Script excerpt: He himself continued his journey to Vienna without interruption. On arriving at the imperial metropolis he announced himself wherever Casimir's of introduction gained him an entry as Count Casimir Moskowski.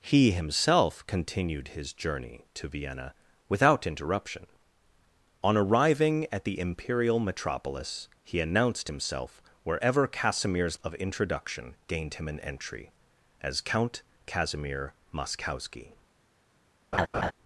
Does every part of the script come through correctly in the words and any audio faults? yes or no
no